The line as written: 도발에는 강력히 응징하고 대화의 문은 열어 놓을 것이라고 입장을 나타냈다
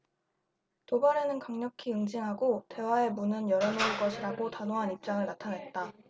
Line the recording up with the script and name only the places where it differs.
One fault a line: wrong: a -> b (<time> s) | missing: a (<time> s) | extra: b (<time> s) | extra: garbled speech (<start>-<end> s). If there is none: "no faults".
extra: 단호한 (4.5 s)